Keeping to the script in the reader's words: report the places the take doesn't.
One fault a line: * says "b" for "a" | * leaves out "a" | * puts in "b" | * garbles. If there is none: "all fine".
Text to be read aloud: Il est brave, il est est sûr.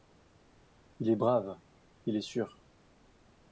all fine